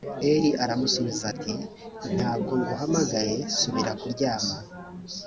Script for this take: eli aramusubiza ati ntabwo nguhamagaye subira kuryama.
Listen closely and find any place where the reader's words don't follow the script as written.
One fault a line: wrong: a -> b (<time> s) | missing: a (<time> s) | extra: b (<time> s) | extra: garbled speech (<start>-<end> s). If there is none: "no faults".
no faults